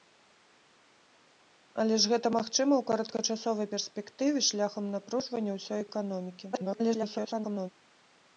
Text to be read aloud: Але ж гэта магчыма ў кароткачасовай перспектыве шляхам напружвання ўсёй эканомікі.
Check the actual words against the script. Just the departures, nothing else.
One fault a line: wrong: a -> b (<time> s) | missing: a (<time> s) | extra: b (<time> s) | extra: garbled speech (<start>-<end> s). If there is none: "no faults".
extra: garbled speech (6.5-7.7 s)